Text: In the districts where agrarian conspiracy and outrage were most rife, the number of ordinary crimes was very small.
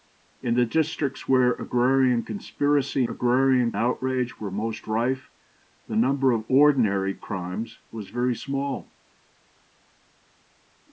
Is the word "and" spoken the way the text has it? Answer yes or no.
no